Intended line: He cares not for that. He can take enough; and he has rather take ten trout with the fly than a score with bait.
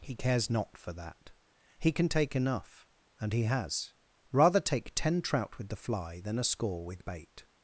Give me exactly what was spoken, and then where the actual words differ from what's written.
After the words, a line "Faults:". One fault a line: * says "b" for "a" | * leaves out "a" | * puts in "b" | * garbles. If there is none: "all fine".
He cares not for that. He can take enough; and he has rather take ten trout with the fly than a score with bait.
Faults:
all fine